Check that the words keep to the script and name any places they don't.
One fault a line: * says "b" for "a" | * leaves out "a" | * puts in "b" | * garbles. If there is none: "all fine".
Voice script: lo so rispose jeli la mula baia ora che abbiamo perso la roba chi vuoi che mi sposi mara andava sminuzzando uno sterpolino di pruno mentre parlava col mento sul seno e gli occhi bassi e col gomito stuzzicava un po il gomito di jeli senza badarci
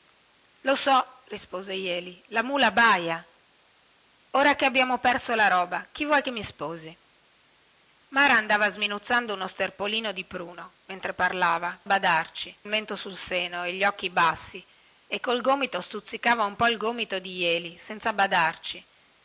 * says "badarci" for "col"